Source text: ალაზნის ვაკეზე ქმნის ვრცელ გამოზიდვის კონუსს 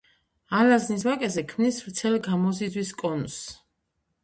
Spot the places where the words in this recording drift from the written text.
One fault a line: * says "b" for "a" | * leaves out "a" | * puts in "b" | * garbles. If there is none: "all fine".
all fine